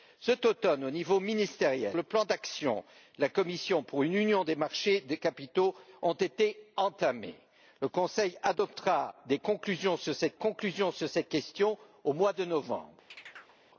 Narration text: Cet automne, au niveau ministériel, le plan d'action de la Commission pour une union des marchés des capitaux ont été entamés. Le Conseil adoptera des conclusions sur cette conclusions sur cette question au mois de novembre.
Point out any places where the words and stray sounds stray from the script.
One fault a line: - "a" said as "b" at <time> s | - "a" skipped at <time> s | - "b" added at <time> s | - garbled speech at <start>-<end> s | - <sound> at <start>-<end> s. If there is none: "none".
- chirp at 13.1-13.6 s